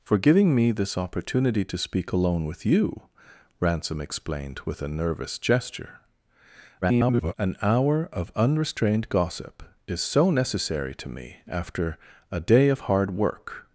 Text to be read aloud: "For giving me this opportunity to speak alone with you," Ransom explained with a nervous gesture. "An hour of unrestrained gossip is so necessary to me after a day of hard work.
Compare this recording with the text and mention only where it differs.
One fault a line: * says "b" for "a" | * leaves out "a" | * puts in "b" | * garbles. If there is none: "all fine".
* garbles